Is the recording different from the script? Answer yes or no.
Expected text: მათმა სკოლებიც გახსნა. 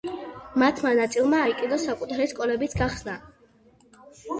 yes